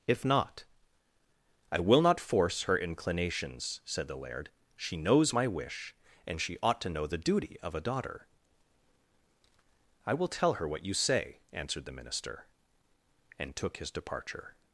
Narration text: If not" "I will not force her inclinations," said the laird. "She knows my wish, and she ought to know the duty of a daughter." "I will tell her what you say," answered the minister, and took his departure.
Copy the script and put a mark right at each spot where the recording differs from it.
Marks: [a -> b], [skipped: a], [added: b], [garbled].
If not" "I will not force her inclinations," said the laird. "She knows my wish, and she ought to know the duty of a daughter." "I will tell her what you say," answered the minister, and took his departure.